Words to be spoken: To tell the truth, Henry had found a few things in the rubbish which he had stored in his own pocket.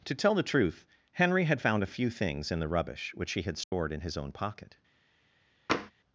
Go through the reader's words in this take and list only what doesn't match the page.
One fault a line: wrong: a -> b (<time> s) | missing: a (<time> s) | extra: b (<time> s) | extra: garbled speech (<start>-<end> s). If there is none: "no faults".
no faults